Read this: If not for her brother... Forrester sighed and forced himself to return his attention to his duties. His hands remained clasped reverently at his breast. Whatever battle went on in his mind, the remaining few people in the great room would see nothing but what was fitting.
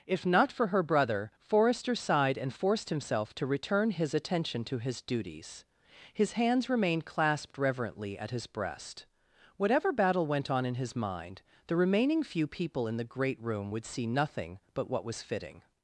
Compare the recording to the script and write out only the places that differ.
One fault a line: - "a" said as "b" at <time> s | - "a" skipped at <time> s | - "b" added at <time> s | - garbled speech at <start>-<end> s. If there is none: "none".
none